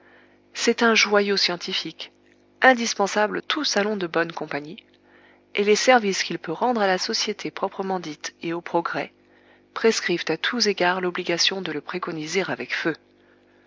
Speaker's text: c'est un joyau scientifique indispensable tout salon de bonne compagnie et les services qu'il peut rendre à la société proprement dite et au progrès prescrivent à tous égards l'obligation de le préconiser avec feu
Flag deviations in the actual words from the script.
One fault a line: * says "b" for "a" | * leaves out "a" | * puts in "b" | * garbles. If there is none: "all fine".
all fine